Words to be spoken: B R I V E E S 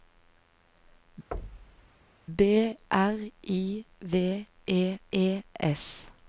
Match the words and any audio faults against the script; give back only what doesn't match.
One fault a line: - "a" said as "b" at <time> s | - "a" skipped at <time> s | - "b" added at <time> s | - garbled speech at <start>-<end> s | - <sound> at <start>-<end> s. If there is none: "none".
- thud at 1.3-1.9 s